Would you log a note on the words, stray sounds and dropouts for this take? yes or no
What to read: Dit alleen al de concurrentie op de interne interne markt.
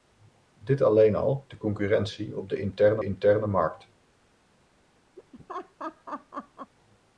yes